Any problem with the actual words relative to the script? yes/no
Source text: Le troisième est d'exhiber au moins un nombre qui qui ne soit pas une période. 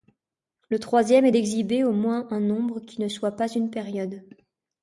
yes